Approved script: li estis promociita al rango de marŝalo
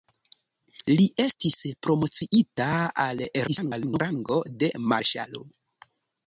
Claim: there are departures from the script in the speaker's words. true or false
true